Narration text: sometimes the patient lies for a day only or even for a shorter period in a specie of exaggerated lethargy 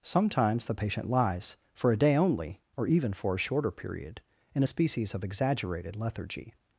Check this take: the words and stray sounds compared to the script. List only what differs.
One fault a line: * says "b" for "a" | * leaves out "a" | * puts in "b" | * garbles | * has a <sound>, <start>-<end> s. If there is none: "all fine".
* says "species" for "specie"